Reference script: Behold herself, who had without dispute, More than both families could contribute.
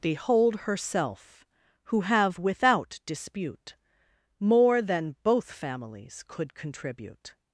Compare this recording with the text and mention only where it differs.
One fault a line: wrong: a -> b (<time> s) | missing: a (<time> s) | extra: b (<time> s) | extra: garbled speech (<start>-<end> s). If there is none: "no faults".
wrong: had -> have (2.0 s)